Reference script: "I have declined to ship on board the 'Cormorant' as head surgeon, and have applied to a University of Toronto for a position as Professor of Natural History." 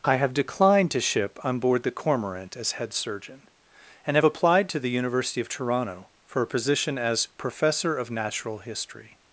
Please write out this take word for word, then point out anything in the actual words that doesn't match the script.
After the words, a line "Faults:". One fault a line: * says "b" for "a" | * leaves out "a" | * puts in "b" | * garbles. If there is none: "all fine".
"I have declined to ship on board the 'Cormorant' as head surgeon, and have applied to the University of Toronto for a position as Professor of Natural History."
Faults:
* says "the" for "a"